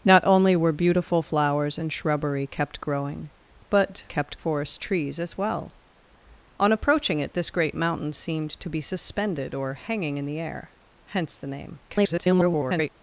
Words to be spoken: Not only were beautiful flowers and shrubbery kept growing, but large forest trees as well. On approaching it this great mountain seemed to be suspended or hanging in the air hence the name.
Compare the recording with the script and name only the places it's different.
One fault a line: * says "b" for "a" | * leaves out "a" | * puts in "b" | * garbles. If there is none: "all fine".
* says "kept" for "large"
* garbles